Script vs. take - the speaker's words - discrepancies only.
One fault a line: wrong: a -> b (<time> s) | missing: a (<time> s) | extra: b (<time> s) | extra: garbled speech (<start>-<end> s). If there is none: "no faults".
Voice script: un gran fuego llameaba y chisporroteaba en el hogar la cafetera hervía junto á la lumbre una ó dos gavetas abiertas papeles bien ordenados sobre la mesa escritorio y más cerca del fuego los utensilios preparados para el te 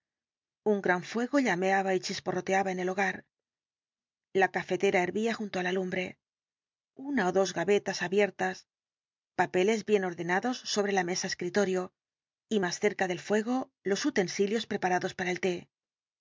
no faults